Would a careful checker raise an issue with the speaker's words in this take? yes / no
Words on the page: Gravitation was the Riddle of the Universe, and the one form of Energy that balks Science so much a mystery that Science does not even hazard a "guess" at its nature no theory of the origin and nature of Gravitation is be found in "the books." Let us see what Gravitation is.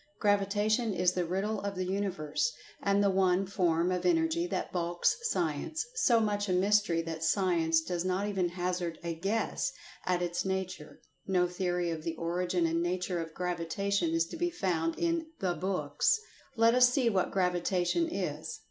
yes